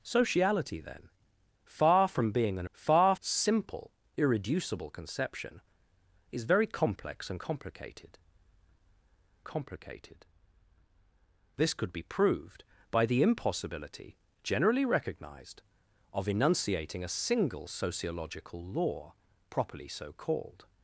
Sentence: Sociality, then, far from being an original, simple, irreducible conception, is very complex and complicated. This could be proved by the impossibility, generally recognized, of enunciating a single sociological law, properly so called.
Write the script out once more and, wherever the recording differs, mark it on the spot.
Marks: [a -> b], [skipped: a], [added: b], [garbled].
Sociality, then, far from being an [original, -> far] simple, irreducible conception, is very complex and complicated. [added: complicated] This could be proved by the impossibility, generally recognized, of enunciating a single sociological law, properly so called.